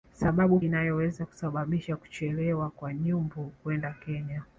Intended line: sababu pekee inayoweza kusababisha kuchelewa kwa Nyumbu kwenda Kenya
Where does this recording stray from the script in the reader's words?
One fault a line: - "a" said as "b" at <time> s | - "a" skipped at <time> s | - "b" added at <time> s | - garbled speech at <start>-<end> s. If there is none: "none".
- "pekee" skipped at 0.6 s